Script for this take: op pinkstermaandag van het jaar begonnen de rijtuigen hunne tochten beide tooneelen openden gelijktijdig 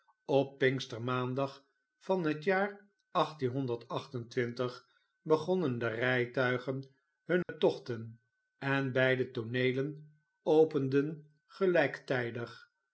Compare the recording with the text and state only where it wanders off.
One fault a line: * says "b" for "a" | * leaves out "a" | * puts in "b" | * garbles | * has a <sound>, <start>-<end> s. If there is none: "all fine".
* has a dropout, 7.4-7.5 s
* puts in "en"